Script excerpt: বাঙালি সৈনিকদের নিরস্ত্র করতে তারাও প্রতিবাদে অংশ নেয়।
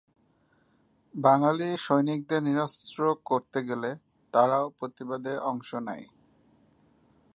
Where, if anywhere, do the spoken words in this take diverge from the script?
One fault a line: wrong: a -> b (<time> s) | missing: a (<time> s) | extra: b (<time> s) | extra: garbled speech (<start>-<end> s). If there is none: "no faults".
extra: গেলে (3.6 s)